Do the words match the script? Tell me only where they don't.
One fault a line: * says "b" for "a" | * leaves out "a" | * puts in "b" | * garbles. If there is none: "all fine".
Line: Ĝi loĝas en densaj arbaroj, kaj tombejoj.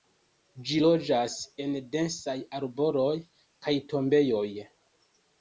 all fine